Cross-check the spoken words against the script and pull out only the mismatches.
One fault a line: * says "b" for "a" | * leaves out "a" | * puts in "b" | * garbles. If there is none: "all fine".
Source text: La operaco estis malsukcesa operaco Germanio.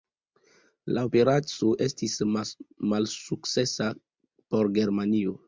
* says "por" for "operaco"